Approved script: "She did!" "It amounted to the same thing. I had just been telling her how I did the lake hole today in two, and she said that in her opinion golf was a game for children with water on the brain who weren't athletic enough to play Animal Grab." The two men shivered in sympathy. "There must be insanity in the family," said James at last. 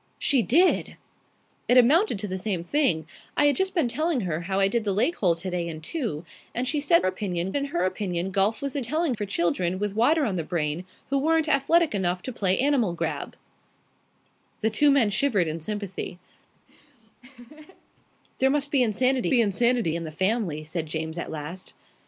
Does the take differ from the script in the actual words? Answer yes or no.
yes